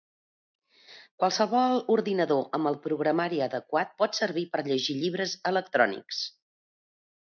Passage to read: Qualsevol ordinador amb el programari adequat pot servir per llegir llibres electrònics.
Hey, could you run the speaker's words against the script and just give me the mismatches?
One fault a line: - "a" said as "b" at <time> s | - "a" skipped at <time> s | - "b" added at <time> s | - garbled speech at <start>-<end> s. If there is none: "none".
none